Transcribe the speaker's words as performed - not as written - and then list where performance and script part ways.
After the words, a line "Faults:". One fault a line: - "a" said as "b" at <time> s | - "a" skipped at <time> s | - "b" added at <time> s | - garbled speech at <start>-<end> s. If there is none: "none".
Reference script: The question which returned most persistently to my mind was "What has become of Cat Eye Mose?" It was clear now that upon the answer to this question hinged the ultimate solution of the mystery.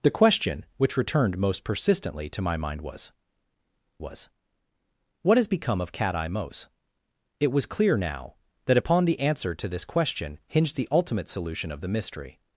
The question which returned most persistently to my mind was was "What has become of Cat Eye Mose?" It was clear now that upon the answer to this question hinged the ultimate solution of the mystery.
Faults:
- "was" added at 4.0 s